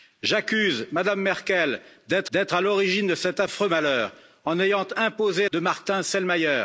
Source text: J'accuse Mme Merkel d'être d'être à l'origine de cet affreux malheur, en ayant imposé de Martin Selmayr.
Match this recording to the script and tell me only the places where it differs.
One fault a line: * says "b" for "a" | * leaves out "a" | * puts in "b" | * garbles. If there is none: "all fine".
all fine